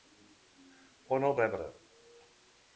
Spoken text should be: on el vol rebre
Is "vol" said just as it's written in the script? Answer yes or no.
no